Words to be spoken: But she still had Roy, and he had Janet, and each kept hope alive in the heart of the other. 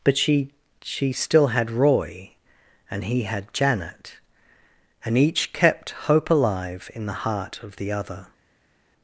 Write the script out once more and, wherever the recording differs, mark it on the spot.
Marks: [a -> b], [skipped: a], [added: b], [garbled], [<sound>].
But she [added: she] still had Roy, and he had Janet, and each kept hope alive in the heart of the other.